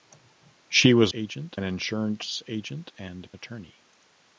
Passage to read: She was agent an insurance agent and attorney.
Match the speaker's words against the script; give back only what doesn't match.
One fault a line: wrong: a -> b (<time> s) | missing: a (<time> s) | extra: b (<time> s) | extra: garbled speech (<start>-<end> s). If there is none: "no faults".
no faults